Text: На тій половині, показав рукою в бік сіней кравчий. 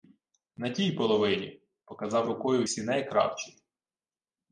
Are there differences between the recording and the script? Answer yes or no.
yes